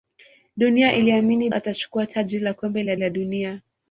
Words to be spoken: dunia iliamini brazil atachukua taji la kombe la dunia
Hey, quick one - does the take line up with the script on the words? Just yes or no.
no